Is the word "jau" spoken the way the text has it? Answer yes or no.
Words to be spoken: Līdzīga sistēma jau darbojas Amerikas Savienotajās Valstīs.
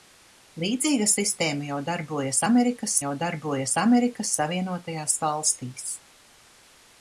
yes